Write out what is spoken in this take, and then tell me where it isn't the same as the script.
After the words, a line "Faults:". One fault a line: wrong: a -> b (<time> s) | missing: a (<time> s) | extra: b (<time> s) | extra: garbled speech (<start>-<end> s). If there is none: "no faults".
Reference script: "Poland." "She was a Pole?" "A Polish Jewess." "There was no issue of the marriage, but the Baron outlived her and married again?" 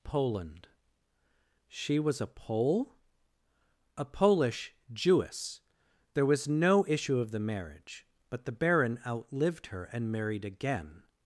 "Poland." "She was a Pole?" "A Polish Jewess." "There was no issue of the marriage, but the Baron outlived her and married again?"
Faults:
no faults